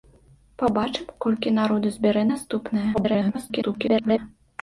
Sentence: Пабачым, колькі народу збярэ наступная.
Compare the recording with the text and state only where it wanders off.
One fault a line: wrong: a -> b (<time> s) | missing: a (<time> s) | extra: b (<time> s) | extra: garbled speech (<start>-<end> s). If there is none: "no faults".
extra: garbled speech (2.9-4.2 s)